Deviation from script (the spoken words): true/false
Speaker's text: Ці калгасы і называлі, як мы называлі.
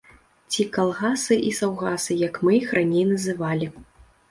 true